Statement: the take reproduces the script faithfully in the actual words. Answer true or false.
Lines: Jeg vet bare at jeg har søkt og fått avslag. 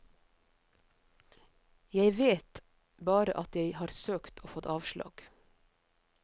true